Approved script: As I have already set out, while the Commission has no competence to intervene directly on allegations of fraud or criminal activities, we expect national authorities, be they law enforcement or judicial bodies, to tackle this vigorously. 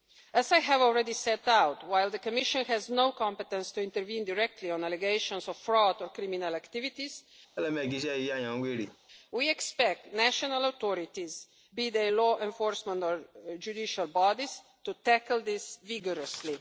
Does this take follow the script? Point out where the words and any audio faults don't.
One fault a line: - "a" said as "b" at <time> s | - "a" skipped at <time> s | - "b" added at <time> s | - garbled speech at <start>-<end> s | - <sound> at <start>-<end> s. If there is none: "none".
- laugh at 7.6-9.0 s